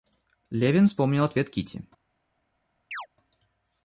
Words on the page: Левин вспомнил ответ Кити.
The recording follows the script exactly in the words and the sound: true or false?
false